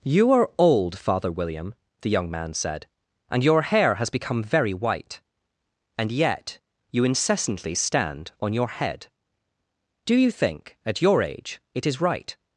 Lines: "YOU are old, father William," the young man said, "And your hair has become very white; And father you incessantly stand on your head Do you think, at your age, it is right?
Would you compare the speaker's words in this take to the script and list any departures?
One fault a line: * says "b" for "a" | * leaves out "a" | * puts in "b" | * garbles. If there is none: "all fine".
* says "yet" for "father"